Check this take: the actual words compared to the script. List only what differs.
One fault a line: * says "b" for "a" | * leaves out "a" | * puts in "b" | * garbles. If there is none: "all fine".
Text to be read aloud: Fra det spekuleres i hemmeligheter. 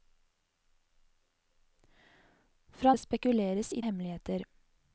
all fine